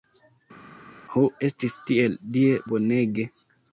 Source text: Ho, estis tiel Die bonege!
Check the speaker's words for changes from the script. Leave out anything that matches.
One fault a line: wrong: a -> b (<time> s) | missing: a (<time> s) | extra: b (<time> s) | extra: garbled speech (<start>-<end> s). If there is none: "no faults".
no faults